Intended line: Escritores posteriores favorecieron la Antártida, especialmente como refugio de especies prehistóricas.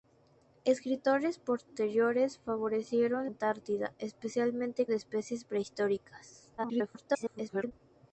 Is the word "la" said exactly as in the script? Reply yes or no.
no